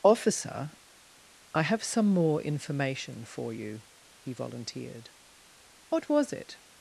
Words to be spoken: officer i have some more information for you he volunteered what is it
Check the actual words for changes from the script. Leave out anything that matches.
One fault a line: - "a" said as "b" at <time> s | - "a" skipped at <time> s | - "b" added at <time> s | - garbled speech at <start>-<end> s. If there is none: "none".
- "is" said as "was" at 6.1 s